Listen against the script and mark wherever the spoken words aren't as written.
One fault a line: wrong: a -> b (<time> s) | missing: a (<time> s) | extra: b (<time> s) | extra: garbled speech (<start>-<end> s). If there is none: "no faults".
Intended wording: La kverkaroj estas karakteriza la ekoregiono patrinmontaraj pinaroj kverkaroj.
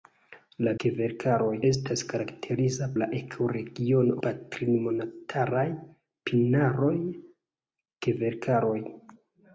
no faults